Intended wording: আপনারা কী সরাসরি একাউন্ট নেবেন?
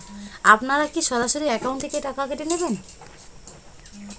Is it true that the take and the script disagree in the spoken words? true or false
true